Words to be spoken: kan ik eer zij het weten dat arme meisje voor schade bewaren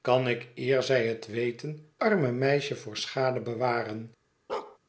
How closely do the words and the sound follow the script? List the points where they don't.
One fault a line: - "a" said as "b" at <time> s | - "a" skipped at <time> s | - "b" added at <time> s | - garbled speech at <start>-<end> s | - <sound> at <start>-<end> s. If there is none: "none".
- "dat" skipped at 1.9 s
- bark at 4.5-4.8 s